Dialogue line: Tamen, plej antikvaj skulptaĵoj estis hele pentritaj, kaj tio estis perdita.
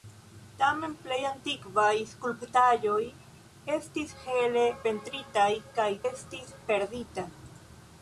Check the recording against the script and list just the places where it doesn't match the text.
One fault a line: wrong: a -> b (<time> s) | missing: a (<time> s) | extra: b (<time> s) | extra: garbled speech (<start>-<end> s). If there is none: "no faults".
missing: tio (5.9 s)